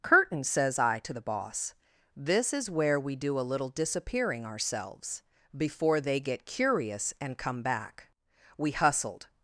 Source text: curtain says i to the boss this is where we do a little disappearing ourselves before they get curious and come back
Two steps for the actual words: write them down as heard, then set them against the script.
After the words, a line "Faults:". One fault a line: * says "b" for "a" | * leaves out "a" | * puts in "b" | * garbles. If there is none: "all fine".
curtain says i to the boss this is where we do a little disappearing ourselves before they get curious and come back we hustled
Faults:
* puts in "we hustled"